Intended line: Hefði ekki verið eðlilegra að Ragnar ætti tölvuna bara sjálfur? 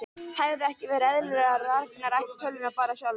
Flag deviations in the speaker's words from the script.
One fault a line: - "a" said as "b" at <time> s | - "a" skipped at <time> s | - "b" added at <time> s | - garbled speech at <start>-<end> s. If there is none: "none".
none